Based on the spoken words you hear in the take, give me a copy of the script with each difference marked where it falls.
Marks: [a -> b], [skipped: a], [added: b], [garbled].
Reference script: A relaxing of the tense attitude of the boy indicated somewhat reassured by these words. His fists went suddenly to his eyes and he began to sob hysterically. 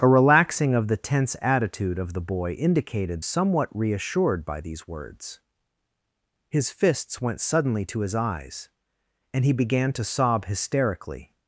A relaxing of the tense attitude of the boy indicated somewhat reassured by these words. His fists went suddenly to his eyes and he began to sob hysterically.